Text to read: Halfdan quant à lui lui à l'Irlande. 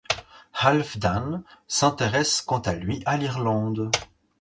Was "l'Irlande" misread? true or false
false